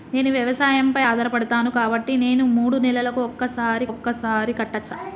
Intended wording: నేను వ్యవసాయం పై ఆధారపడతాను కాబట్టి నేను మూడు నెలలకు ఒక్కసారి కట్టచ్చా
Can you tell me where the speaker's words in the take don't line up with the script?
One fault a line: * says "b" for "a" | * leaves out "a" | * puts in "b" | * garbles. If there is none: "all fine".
* puts in "ఒక్కసారి"